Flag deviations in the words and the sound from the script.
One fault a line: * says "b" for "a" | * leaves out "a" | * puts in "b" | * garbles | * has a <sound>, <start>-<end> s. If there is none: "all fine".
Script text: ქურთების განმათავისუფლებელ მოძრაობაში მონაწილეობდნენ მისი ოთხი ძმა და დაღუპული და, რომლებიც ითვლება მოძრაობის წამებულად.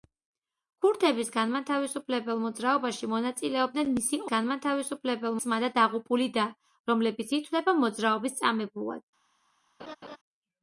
* says "განმათავისუფლებელ" for "ოთხი"
* has a laugh, 9.8-10.2 s